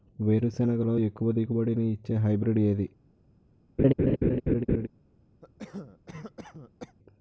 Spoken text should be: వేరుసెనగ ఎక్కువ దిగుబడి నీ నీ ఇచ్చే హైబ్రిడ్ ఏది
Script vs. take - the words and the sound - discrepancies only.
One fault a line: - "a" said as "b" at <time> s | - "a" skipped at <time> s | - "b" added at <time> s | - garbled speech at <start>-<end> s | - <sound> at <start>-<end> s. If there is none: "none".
- "లో" added at 0.8 s
- "నీ" skipped at 1.9 s
- laugh at 3.8-4.9 s
- cough at 5.4-7.0 s